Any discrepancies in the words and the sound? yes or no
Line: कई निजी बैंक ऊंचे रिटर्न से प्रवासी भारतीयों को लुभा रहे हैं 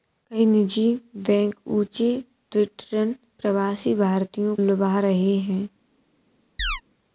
yes